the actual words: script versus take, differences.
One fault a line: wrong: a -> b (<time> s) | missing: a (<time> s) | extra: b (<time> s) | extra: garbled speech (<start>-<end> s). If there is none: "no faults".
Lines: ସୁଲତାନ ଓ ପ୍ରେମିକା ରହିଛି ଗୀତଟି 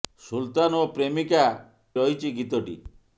no faults